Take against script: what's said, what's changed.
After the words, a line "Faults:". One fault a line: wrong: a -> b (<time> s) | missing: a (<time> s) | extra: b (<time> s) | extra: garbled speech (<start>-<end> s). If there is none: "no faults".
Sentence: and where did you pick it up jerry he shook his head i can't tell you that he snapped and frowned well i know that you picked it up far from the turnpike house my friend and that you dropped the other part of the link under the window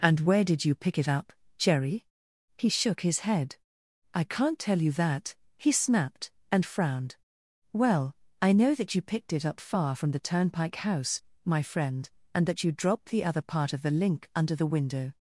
and where did you pick it up jerry he shook his head i can't tell you that he snapped and frowned well i know that you picked it up far from the turnpike house my friend and that you dropped the other part of the link under the window
Faults:
no faults